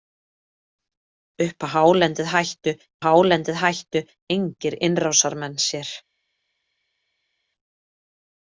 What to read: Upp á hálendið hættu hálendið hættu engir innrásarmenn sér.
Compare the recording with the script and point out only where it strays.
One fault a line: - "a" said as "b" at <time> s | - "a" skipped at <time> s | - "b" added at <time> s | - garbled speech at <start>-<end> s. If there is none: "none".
none